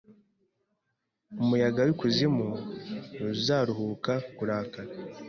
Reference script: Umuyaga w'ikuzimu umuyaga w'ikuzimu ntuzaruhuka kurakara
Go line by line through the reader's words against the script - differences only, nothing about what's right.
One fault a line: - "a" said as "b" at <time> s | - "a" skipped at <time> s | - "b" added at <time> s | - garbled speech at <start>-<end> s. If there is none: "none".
- "umuyaga w'ikuzimu" skipped at 2.5 s